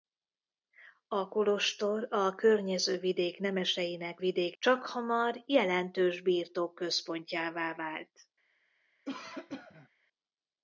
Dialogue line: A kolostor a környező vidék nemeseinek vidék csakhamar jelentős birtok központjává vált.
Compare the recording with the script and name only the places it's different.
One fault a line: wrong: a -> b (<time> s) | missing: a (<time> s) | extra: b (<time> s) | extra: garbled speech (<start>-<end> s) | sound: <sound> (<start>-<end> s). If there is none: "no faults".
sound: cough (9.0-9.9 s)